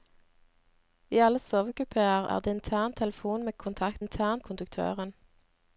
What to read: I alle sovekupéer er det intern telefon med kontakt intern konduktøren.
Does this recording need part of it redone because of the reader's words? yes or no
no